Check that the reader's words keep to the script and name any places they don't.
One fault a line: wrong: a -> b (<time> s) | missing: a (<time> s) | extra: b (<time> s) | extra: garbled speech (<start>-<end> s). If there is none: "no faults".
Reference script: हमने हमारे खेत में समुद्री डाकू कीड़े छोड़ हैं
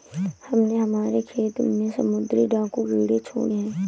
no faults